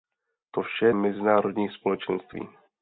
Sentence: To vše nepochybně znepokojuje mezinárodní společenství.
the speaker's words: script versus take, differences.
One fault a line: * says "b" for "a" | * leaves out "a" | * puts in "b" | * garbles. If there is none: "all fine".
* leaves out "nepochybně znepokojuje"